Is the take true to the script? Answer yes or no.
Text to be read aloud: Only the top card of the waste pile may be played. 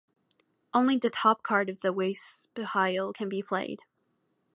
no